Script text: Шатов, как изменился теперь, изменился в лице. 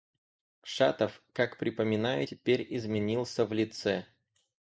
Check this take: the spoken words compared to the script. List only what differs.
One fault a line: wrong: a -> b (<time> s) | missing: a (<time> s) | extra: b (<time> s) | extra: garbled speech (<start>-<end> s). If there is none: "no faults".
wrong: изменился -> припоминаю (1.6 s)